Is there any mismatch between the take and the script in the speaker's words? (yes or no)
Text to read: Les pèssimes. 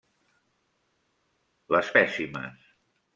no